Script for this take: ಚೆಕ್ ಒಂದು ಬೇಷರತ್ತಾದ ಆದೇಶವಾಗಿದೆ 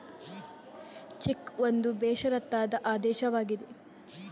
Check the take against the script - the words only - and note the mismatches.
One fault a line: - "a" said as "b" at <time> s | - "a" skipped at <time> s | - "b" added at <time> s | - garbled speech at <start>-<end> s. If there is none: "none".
none